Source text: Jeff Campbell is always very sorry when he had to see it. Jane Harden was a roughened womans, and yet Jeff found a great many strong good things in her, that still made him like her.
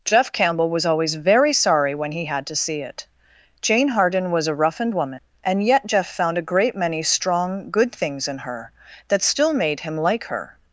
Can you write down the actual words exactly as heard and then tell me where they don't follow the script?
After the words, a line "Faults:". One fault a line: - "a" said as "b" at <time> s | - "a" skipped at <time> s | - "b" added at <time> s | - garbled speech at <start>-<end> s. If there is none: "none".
Jeff Campbell was always very sorry when he had to see it. Jane Harden was a roughened woman, and yet Jeff found a great many strong good things in her, that still made him like her.
Faults:
- "is" said as "was" at 0.7 s
- "womans" said as "woman" at 4.9 s